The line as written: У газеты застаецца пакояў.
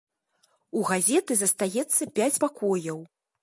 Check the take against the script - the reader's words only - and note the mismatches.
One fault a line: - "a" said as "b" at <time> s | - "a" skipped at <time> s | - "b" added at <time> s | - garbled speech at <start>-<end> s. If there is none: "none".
- "пяць" added at 2.2 s